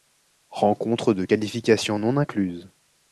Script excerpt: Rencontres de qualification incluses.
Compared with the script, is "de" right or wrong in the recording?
right